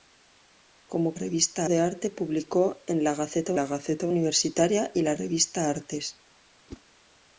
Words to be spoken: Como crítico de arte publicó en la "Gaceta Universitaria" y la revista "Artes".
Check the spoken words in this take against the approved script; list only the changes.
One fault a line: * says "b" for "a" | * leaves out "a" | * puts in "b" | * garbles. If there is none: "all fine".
* says "revista" for "crítico"
* puts in "la Gaceta"